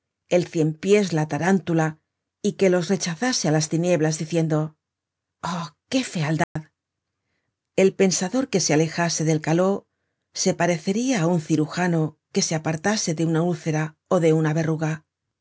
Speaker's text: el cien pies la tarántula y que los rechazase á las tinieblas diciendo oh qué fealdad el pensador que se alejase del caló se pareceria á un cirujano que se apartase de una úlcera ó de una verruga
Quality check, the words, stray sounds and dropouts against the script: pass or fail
fail